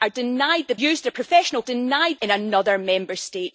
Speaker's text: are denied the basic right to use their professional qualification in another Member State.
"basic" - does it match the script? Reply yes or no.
no